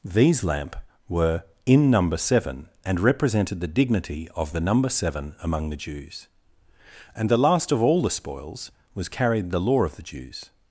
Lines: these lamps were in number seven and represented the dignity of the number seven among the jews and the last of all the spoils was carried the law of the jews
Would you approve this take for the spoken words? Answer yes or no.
no